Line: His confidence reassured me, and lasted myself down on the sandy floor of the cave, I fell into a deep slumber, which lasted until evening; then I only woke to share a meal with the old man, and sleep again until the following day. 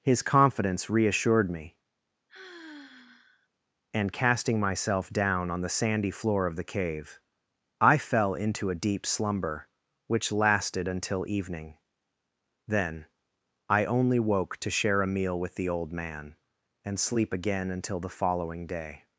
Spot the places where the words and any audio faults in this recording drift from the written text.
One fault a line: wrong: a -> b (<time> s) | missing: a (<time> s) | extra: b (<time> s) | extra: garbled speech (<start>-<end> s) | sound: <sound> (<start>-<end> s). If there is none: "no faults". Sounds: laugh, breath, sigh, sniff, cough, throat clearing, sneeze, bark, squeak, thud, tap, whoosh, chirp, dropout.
sound: sigh (2.3-3.5 s)
wrong: lasted -> casting (4.1 s)